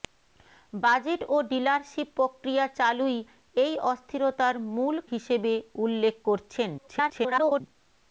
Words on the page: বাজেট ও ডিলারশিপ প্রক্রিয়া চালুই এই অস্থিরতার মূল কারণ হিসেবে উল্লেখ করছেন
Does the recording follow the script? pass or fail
fail